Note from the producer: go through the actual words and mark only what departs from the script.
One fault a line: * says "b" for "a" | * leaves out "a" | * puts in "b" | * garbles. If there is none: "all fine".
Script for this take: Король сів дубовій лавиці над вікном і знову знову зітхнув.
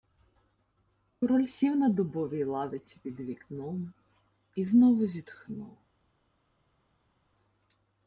* puts in "на"
* says "під" for "над"
* leaves out "знову"